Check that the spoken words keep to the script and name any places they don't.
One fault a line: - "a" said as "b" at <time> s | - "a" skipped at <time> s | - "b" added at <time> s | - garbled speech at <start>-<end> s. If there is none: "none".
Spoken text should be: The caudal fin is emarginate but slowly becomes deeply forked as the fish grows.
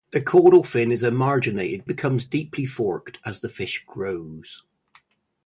- "but slowly" skipped at 1.9 s